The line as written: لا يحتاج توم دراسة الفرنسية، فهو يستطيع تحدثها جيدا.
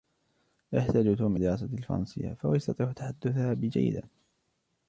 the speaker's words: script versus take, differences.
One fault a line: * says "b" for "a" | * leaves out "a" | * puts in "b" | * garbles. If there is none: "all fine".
all fine